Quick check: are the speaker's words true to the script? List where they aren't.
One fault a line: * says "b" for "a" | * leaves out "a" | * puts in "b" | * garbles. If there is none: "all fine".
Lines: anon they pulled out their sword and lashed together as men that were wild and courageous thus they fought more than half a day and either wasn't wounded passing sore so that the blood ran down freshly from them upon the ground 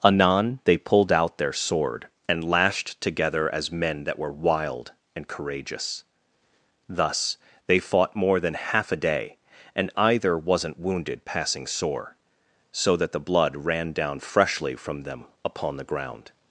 all fine